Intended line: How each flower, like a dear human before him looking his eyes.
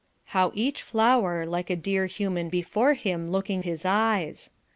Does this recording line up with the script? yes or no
yes